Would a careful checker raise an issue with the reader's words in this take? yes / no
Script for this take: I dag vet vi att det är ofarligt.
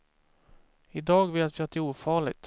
no